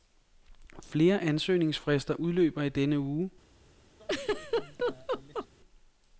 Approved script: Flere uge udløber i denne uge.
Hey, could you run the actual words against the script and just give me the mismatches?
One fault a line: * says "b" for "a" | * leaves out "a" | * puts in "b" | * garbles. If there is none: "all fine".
* says "ansøgningsfrister" for "uge"